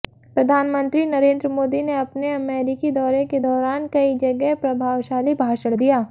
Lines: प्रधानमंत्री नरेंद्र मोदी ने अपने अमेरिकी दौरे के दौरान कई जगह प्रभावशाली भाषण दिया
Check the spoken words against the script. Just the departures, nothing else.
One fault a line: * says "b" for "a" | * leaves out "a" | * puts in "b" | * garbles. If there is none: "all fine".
all fine